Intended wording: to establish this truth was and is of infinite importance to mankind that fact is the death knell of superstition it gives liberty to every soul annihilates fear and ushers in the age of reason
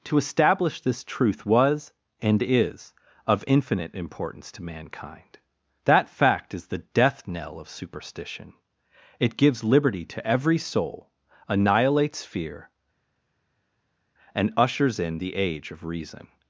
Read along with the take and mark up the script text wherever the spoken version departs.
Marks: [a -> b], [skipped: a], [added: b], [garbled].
to establish this truth was and is of infinite importance to mankind that fact is the death knell of superstition it gives liberty to every soul annihilates fear and ushers in the age of reason